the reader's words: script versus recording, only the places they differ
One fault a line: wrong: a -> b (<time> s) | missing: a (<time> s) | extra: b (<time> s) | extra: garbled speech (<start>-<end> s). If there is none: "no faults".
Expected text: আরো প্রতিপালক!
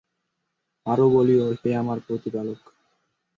extra: বলিও হে আমার (1.1 s)